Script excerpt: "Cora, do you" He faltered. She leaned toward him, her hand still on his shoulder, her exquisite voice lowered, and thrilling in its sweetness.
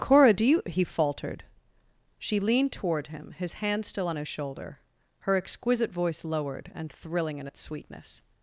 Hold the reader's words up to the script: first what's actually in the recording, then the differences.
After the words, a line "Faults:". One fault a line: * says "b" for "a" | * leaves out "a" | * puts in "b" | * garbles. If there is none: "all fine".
"Cora, do you" He faltered. She leaned toward him, his hand still on his shoulder, her exquisite voice lowered, and thrilling in its sweetness.
Faults:
* says "his" for "her"